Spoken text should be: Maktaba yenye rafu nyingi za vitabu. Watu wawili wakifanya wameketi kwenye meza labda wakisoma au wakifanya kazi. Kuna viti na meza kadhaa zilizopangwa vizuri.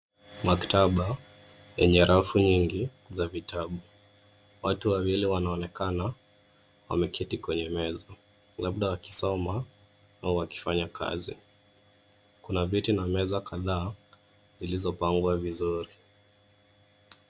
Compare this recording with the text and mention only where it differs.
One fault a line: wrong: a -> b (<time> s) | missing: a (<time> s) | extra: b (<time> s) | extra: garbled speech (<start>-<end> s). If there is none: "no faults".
wrong: wakifanya -> wanaonekana (5.2 s)